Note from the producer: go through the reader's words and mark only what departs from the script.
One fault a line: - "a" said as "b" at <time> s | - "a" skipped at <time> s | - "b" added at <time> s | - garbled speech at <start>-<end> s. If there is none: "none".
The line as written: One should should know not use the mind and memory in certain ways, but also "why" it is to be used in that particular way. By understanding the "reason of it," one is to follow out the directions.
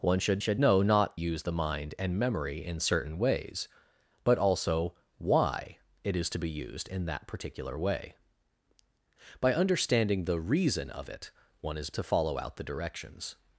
none